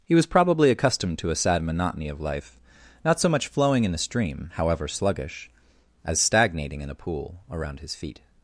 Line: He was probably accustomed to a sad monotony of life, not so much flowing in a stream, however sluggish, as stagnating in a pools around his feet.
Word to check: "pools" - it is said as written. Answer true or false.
false